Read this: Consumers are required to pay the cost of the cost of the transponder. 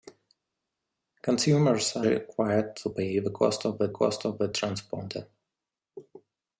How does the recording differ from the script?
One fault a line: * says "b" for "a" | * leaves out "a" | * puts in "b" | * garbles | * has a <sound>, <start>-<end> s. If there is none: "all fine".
all fine